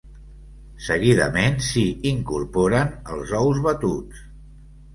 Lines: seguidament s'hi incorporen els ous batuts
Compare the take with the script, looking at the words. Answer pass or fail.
pass